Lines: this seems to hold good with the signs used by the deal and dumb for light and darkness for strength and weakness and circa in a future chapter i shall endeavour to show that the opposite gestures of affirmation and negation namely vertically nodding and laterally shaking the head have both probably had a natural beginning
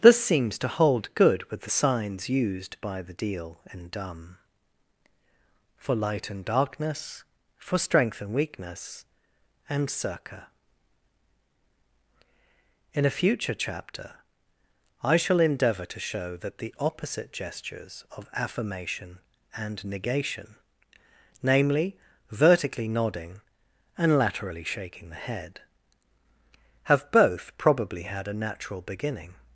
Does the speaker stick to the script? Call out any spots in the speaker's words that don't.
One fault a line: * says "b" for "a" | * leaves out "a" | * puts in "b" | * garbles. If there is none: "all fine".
all fine